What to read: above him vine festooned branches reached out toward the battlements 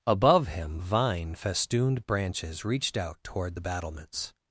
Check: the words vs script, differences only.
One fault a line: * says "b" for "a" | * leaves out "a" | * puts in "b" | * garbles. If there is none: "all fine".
all fine